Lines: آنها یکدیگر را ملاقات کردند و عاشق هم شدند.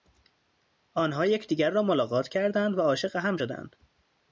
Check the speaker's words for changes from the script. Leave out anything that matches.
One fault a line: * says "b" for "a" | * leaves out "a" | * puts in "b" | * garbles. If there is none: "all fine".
all fine